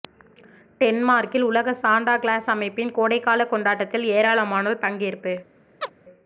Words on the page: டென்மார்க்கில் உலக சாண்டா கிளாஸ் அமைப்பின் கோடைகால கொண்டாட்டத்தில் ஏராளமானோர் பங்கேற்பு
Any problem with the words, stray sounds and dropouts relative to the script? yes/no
yes